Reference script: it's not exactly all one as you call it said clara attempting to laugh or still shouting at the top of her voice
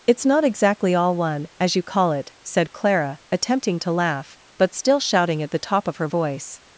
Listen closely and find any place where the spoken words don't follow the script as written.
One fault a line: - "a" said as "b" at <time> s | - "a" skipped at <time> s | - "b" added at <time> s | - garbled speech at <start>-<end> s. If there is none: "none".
- "or" said as "but" at 4.6 s